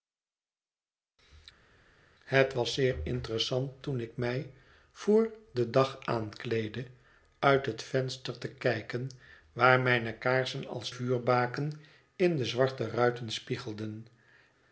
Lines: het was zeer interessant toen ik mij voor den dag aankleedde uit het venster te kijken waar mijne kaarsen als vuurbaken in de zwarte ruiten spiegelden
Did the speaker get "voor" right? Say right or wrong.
right